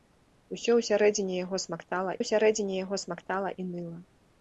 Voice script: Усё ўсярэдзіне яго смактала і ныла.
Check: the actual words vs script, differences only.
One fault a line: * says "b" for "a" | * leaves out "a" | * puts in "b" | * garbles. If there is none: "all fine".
* puts in "ўсярэдзіне яго смактала"